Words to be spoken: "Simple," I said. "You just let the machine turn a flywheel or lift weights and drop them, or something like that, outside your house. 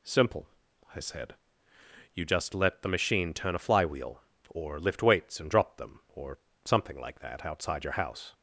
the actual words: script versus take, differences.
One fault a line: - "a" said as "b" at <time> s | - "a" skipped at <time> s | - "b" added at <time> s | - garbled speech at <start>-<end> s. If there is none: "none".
none